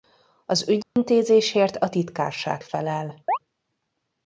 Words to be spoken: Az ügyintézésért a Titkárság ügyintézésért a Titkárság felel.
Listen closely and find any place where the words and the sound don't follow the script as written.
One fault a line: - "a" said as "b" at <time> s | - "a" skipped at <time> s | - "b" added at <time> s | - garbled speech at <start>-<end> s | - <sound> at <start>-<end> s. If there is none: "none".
- dropout at 0.8-1.0 s
- "ügyintézésért a Titkárság" skipped at 2.6 s
- chirp at 3.3-3.4 s